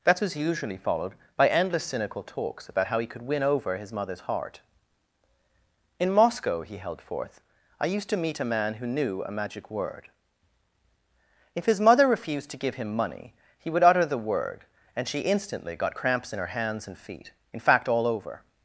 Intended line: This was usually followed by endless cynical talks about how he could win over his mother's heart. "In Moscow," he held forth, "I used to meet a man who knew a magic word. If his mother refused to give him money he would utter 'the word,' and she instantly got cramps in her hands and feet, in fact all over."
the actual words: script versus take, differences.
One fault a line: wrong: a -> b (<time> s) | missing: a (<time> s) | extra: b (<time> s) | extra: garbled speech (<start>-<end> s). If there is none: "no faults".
wrong: This -> That (0.0 s)